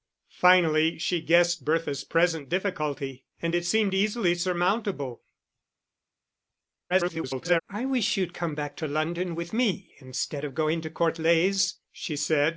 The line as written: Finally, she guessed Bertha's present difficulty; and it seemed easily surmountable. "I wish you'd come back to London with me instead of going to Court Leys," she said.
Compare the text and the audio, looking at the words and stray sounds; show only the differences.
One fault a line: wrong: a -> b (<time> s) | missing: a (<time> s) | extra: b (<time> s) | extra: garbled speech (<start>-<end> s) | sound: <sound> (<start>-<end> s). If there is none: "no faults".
extra: garbled speech (6.9-7.6 s)